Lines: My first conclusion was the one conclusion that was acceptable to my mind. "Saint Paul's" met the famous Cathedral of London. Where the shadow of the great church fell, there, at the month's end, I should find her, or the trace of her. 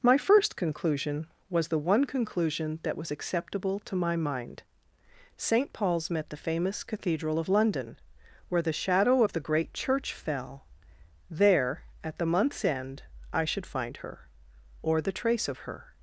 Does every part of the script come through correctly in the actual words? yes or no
yes